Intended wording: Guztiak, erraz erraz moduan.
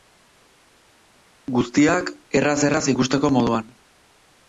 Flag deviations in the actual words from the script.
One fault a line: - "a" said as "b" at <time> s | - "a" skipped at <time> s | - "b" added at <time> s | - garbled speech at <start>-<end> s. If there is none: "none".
- "ikusteko" added at 3.0 s